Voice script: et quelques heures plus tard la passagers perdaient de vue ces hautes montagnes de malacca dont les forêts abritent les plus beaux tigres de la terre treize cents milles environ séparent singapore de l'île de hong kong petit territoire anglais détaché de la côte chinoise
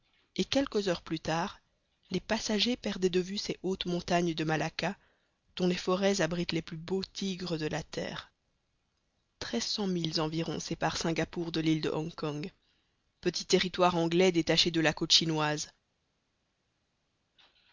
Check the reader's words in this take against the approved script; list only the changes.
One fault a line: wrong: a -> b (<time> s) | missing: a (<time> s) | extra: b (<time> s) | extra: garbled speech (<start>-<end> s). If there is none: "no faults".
wrong: la -> les (2.1 s)